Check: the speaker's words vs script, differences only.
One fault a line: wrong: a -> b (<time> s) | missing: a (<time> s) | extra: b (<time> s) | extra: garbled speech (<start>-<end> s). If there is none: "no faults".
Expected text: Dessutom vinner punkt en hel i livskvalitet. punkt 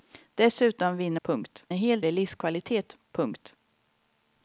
no faults